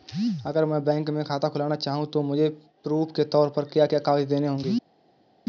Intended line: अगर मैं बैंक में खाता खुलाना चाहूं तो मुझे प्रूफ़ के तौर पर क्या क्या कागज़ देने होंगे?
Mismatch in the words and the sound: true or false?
false